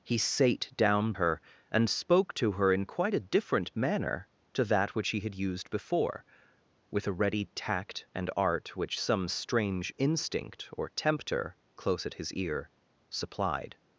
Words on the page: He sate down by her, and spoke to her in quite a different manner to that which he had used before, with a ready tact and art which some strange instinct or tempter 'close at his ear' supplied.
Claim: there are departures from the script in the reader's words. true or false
true